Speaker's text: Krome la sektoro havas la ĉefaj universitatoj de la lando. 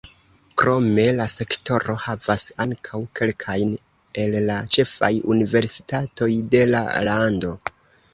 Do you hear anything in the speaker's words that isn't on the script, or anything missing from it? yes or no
yes